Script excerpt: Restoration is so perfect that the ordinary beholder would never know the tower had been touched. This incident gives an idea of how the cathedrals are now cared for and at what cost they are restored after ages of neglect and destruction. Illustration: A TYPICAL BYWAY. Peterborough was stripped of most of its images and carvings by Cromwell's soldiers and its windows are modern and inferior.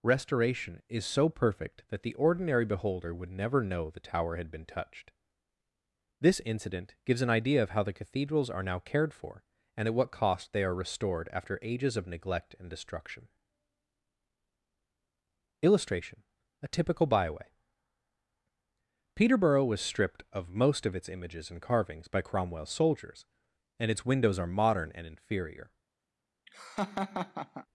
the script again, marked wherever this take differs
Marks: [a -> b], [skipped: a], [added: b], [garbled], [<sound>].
Restoration is so perfect that the ordinary beholder would never know the tower had been touched. This incident gives an idea of how the cathedrals are now cared for and at what cost they are restored after ages of neglect and destruction. Illustration: A TYPICAL BYWAY. Peterborough was stripped of most of its images and carvings by Cromwell's soldiers and its windows are modern and inferior. [laugh]